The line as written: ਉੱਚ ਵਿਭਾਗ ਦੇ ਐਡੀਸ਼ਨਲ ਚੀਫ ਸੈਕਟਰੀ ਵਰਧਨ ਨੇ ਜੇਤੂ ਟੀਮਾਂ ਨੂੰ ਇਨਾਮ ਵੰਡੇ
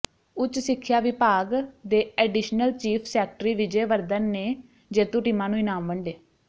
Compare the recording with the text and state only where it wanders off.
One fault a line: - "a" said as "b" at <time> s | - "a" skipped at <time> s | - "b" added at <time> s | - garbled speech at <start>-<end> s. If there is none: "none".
- "ਸਿੱਖਿਆ" added at 0.6 s
- "ਵਿਜੇ" added at 3.5 s